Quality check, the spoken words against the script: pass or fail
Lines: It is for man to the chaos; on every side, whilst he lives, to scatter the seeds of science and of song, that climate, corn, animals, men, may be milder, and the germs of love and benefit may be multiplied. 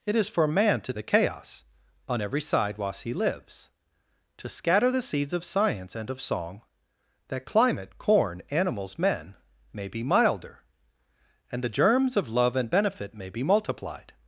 pass